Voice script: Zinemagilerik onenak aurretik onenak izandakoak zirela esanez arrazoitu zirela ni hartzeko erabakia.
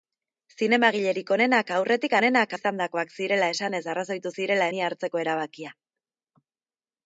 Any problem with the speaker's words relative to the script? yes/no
no